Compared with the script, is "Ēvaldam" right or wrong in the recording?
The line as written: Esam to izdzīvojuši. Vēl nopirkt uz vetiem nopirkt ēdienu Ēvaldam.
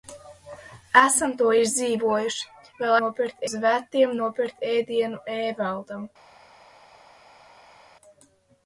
right